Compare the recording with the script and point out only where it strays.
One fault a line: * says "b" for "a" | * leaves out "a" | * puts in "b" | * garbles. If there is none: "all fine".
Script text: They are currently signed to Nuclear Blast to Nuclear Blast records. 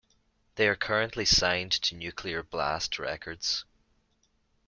* leaves out "to Nuclear Blast"